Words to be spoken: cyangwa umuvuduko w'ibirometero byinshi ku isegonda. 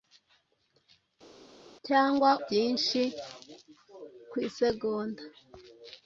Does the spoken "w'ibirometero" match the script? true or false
false